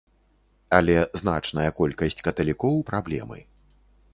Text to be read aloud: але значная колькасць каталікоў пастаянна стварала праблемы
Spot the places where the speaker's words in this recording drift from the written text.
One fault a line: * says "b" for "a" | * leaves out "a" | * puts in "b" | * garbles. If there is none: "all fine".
* leaves out "пастаянна стварала"